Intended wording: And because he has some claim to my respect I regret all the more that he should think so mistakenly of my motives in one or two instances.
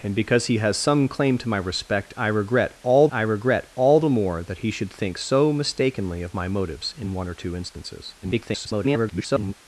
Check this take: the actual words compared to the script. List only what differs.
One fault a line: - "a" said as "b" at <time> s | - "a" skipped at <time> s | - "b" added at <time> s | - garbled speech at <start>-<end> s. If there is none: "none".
- "I regret all" added at 3.1 s
- garbled speech at 8.2-9.5 s